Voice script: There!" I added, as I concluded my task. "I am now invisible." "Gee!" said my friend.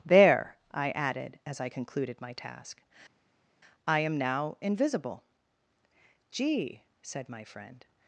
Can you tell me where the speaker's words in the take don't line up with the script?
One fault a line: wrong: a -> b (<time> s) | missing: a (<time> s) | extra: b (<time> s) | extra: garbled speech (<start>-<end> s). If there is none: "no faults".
no faults